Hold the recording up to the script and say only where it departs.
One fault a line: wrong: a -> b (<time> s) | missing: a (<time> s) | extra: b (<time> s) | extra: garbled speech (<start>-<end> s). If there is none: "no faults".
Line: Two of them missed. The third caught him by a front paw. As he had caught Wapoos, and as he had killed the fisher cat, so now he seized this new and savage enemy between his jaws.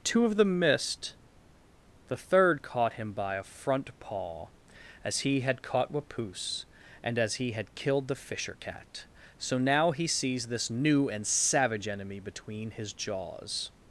wrong: seized -> sees (10.1 s)